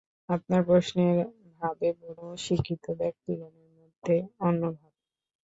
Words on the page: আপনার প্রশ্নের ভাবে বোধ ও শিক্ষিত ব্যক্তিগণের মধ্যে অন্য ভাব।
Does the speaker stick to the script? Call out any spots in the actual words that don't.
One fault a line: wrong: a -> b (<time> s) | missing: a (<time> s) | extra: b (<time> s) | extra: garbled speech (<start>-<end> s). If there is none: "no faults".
no faults